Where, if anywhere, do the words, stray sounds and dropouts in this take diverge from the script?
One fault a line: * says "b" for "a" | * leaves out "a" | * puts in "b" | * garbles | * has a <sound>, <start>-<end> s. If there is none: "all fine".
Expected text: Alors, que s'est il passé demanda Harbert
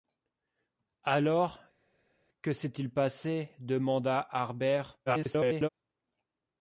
* garbles